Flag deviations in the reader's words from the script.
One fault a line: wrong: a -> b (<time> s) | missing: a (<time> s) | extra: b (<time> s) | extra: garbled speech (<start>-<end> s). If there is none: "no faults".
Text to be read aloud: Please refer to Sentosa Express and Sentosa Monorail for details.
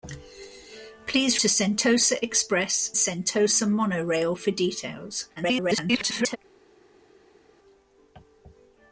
missing: refer (1.4 s)
missing: and (2.9 s)
extra: garbled speech (5.4-6.4 s)